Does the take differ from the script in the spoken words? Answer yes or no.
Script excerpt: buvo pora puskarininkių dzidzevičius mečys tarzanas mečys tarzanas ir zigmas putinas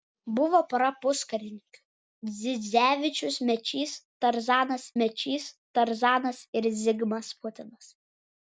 no